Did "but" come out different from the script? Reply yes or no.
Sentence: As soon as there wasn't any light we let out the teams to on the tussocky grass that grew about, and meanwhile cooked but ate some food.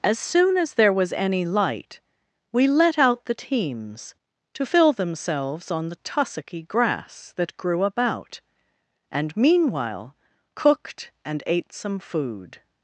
yes